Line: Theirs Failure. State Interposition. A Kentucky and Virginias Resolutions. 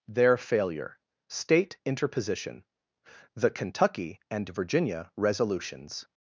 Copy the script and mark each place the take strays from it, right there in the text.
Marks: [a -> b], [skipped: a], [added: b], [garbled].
[Theirs -> Their] Failure. State Interposition. [A -> The] Kentucky and [Virginias -> Virginia] Resolutions.